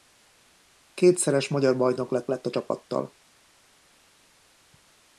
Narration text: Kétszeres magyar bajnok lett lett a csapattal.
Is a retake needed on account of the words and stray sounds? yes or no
no